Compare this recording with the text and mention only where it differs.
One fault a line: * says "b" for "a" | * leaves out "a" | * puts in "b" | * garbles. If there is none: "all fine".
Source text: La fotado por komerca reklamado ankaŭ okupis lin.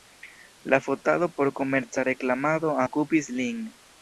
* leaves out "ankaŭ"